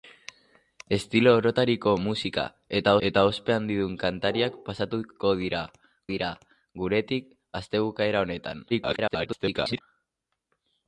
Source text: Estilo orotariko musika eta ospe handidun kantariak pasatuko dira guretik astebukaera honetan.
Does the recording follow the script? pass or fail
fail